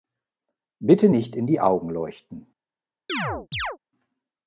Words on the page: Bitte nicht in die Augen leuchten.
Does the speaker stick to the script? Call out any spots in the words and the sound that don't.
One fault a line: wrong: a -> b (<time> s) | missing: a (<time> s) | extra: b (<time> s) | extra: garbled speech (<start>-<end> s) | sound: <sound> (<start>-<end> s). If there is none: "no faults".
sound: chirp (3.1-3.8 s)